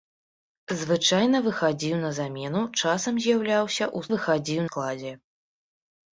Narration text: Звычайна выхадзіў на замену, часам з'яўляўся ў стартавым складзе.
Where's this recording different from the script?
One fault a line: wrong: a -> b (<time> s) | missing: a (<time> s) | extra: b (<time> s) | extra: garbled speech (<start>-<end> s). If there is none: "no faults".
wrong: стартавым -> выхадзіў (4.1 s)